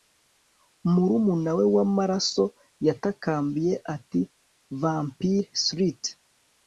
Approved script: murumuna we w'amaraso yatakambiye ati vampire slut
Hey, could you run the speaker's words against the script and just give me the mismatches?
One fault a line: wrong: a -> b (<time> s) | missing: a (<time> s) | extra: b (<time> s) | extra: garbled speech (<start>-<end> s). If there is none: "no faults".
no faults